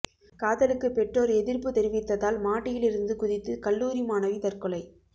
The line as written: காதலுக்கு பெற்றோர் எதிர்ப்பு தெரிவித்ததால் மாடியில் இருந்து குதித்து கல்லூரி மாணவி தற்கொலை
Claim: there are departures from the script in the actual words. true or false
false